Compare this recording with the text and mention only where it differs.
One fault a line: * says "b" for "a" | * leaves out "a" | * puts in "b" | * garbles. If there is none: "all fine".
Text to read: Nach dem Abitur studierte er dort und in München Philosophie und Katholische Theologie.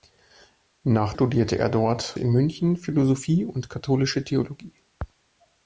* leaves out "dem Abitur"
* leaves out "und"